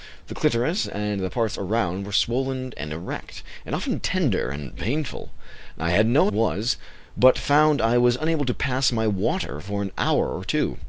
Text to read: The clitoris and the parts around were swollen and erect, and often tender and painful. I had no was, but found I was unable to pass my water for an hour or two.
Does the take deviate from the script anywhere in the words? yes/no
no